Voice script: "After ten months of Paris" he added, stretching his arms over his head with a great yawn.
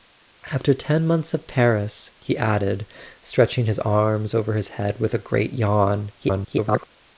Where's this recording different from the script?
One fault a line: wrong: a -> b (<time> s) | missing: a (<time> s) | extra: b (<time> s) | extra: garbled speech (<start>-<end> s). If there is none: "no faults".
extra: garbled speech (6.2-6.9 s)